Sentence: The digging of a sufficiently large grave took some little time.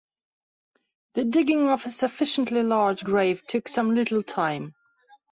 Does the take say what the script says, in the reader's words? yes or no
yes